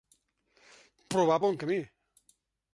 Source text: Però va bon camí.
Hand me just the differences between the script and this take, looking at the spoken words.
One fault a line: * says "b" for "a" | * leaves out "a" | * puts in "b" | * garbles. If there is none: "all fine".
all fine